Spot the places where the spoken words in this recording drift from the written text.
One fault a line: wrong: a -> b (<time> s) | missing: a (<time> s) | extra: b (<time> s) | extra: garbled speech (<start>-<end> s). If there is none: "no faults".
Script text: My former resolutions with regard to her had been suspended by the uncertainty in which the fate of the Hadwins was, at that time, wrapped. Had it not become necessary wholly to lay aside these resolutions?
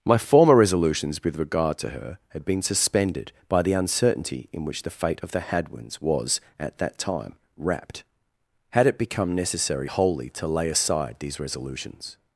missing: not (9.0 s)